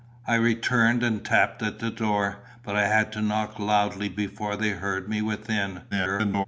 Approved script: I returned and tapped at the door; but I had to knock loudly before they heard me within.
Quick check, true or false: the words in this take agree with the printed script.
false